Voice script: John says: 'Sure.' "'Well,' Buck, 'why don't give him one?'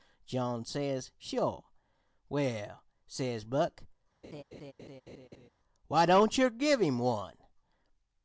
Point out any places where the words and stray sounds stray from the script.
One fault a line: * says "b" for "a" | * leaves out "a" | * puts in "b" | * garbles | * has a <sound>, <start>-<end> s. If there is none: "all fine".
* puts in "says"
* has a laugh, 4.2-5.5 s
* puts in "yer"